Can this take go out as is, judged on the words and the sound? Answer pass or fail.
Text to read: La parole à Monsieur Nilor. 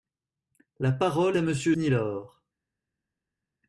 pass